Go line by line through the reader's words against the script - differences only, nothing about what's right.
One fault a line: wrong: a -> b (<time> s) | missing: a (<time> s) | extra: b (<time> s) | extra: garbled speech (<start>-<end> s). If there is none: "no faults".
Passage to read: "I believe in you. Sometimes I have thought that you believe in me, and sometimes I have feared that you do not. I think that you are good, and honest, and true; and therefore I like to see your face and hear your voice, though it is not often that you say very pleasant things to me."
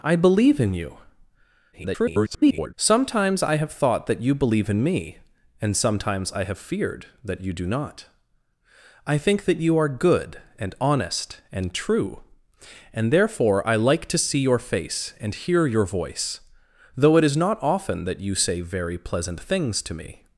extra: garbled speech (1.7-2.7 s)